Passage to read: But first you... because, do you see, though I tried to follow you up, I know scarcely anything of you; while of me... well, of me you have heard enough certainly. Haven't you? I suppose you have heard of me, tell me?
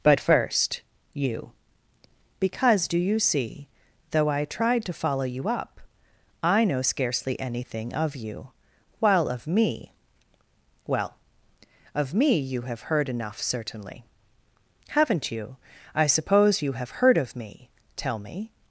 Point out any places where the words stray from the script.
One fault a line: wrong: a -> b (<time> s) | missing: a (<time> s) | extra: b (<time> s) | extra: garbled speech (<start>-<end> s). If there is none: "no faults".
no faults